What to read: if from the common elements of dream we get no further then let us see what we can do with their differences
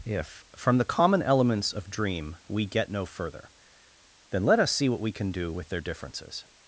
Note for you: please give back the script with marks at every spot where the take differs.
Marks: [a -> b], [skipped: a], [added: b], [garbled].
if from the common elements of dream we get no further then let us see what we can do with their differences